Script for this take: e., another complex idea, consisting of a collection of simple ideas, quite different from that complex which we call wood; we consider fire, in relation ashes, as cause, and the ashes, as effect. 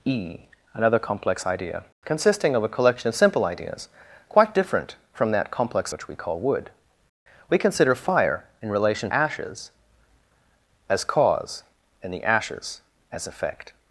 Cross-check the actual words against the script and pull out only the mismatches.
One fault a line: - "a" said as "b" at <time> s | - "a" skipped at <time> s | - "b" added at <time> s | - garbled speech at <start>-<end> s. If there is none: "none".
none